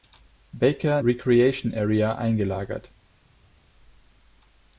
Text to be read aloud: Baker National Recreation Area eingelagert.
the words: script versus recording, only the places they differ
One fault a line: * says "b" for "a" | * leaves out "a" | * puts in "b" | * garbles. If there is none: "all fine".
* leaves out "National"